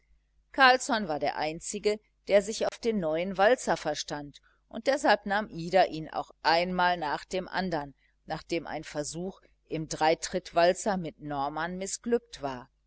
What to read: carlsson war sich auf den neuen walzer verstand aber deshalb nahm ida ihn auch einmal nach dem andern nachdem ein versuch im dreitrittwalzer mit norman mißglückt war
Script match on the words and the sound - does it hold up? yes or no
no